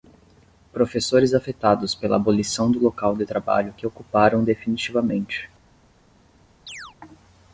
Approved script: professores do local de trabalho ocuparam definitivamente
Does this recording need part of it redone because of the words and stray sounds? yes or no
yes